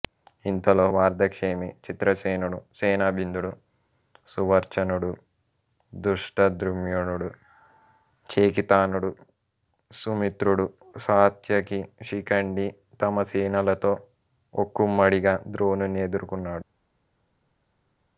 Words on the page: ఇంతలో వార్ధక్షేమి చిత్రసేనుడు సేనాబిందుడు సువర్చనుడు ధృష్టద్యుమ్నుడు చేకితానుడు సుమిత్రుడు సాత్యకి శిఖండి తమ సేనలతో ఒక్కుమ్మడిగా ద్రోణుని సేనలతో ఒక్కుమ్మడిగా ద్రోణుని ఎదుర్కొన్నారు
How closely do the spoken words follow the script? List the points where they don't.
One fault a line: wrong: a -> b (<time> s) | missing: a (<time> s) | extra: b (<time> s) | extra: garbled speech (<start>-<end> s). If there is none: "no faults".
missing: సేనలతో ఒక్కుమ్మడిగా ద్రోణుని (16.0 s)